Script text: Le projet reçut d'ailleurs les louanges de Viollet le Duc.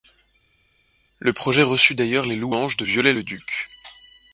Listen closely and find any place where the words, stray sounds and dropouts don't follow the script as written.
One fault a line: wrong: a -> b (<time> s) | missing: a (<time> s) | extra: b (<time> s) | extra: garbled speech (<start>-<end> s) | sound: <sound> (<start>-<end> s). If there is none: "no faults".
no faults